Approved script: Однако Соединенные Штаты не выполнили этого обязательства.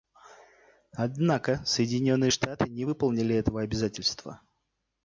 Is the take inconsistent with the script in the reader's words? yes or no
no